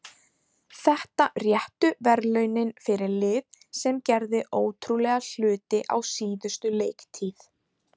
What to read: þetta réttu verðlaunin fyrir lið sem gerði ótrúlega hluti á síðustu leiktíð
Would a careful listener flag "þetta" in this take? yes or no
no